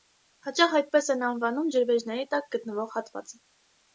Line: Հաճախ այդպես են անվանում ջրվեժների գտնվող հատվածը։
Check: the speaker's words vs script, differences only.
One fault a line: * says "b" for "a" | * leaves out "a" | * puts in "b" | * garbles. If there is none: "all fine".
* puts in "տակ"